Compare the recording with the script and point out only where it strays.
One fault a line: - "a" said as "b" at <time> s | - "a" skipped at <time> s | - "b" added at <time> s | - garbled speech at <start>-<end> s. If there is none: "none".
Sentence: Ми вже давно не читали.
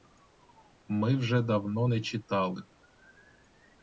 none